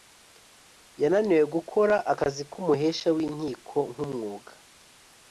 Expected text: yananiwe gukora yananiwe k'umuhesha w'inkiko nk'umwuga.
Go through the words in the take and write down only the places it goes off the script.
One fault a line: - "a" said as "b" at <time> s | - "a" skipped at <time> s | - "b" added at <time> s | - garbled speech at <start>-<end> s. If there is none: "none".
- "yananiwe" said as "akazi" at 2.1 s